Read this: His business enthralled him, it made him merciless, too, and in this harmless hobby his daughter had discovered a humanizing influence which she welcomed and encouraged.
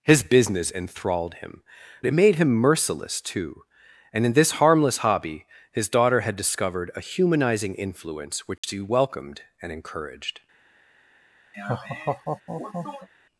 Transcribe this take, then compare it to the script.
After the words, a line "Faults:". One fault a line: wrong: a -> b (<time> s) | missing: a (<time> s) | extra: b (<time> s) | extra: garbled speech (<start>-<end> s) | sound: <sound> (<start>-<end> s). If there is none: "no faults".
His business enthralled him, it made him merciless, too, and in this harmless hobby his daughter had discovered a humanizing influence which she welcomed and encouraged.
Faults:
sound: dropout (8.6-8.6 s)
sound: laugh (11.5-13.1 s)